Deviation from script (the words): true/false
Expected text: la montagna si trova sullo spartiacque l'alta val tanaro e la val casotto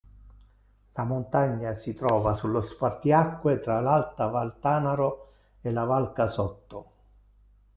true